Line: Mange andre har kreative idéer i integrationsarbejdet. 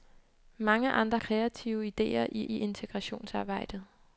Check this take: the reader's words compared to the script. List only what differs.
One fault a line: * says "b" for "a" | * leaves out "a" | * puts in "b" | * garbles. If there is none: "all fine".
* leaves out "har"
* puts in "i"